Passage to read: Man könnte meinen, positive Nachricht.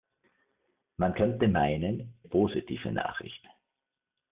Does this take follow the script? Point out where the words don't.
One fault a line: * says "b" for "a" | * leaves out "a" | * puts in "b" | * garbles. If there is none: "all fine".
all fine